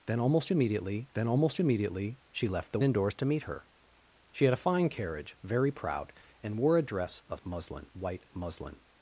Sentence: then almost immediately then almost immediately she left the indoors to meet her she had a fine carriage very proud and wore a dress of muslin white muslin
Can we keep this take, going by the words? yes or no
yes